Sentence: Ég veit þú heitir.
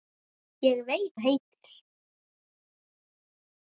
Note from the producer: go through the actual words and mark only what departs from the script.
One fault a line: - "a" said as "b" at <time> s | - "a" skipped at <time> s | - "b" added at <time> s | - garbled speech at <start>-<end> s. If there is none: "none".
none